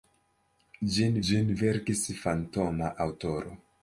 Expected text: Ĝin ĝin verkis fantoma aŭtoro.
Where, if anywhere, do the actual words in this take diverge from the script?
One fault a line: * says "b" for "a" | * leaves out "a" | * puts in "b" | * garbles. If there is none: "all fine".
all fine